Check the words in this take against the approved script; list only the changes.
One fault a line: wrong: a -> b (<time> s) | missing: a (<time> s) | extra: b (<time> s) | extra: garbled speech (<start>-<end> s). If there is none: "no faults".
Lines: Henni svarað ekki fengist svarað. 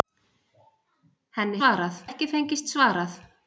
no faults